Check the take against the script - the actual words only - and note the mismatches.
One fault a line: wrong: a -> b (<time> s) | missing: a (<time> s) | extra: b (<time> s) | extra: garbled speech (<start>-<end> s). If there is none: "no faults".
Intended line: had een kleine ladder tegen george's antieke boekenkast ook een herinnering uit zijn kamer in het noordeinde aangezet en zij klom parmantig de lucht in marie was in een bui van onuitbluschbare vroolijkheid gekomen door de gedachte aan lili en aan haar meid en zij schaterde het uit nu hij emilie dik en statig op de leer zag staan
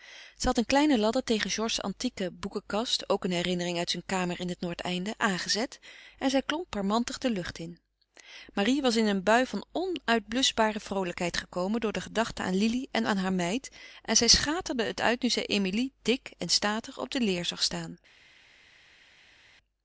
wrong: hij -> zij (15.3 s)